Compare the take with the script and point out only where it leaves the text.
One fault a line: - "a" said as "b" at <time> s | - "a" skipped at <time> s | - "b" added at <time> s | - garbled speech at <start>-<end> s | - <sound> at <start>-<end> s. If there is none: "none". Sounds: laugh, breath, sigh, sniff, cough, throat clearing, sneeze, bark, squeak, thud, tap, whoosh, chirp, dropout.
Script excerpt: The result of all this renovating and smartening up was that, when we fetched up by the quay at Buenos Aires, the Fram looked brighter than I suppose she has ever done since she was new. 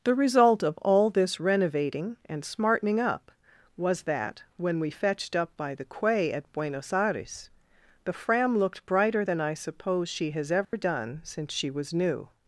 - dropout at 10.6-10.7 s